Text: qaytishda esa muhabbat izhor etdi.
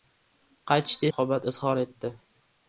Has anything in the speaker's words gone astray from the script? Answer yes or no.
yes